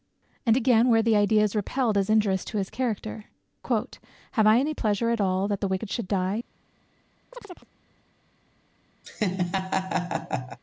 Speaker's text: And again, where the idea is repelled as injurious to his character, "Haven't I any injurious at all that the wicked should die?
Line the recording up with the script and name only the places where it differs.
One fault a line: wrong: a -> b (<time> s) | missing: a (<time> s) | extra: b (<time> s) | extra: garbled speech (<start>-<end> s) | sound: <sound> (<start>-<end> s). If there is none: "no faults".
wrong: Haven't -> Have (4.3 s)
wrong: injurious -> pleasure (4.7 s)
sound: chirp (7.3-7.7 s)
sound: laugh (9.0-10.6 s)